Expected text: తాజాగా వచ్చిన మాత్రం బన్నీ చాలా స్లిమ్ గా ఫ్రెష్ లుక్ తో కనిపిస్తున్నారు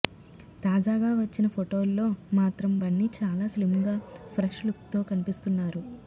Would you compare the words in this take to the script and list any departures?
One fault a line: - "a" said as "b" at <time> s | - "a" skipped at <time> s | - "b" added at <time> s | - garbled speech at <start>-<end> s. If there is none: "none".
- "ఫొటోల్లో" added at 1.5 s